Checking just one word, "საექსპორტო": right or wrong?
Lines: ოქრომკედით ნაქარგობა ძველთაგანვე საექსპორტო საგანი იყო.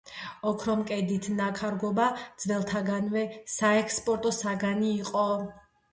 right